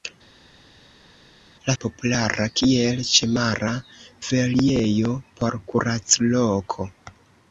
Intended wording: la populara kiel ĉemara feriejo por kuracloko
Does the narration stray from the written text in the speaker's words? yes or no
no